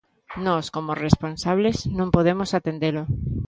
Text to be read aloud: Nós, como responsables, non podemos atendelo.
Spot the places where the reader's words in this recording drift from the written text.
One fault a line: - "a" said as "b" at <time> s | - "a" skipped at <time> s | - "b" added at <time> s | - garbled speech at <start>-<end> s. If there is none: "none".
none